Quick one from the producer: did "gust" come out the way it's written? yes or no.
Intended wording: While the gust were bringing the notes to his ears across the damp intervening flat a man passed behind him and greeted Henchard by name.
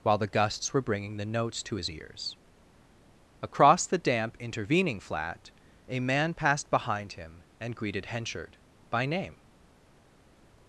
no